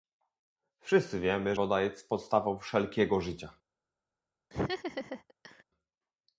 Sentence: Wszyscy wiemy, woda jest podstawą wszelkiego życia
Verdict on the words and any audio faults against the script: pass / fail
fail